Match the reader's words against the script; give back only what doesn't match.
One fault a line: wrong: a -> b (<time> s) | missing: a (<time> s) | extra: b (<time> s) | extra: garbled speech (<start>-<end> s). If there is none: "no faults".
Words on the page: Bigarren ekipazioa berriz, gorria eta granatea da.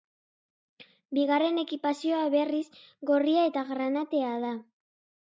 no faults